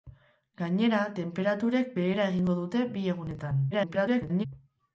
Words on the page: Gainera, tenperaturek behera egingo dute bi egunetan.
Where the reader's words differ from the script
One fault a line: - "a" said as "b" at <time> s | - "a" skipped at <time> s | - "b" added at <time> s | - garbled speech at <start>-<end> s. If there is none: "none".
- garbled speech at 3.7-4.5 s